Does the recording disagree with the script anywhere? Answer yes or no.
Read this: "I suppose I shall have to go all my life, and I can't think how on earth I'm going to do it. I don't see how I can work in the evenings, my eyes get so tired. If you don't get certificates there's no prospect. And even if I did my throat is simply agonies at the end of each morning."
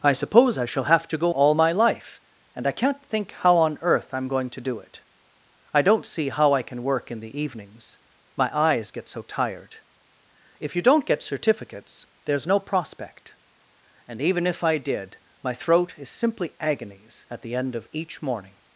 no